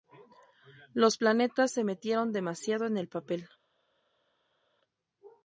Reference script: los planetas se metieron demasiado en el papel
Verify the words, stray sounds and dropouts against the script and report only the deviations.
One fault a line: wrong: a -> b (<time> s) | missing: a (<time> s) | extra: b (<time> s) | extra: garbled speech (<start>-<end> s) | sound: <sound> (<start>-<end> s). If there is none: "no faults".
no faults